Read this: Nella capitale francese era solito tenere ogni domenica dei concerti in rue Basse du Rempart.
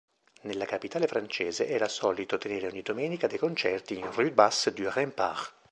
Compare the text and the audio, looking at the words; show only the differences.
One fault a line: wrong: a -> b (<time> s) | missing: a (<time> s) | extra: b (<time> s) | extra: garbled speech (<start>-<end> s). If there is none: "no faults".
no faults